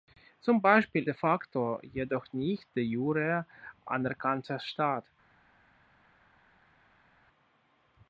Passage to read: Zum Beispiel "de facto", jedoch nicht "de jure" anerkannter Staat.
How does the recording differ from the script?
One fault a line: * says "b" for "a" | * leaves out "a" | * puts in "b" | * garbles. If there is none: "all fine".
all fine